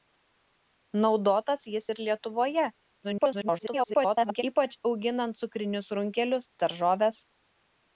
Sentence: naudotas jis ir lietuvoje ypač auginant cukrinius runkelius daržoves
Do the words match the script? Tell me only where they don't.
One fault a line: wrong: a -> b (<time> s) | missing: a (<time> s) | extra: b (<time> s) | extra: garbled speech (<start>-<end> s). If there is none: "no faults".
extra: garbled speech (3.0-4.4 s)